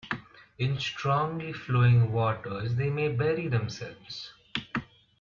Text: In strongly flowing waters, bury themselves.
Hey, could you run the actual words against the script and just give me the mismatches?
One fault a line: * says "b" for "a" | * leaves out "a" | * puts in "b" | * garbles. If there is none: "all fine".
* puts in "they may"